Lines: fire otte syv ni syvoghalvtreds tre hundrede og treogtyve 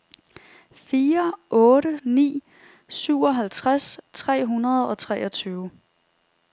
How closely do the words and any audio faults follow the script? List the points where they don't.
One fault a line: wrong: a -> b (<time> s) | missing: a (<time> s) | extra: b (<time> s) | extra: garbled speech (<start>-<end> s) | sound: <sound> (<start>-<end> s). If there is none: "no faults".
missing: syv (2.0 s)